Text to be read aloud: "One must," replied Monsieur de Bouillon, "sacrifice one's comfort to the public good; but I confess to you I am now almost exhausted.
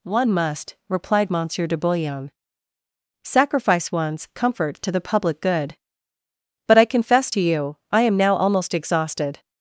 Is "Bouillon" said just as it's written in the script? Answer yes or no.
yes